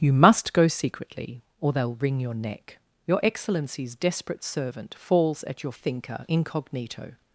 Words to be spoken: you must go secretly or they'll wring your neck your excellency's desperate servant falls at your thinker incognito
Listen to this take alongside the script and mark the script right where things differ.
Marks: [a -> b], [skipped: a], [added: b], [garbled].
you must go secretly or they'll wring your neck your excellency's desperate servant falls at your thinker incognito